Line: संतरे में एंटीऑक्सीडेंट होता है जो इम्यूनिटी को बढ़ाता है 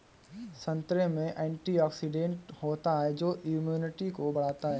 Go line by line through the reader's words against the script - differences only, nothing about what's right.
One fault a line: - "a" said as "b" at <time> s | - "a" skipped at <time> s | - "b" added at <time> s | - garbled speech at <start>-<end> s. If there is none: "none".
none